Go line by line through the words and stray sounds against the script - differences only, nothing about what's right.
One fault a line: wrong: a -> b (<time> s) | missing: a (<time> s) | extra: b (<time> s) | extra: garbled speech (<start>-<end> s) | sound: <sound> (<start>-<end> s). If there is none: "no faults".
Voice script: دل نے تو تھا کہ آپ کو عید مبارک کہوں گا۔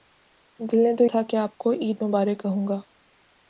no faults